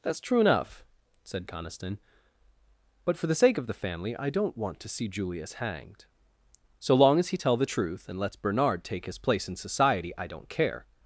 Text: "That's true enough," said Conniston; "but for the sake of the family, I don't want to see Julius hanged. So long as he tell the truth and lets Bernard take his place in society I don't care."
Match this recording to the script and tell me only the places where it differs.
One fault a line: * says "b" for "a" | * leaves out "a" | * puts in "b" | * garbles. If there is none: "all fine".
all fine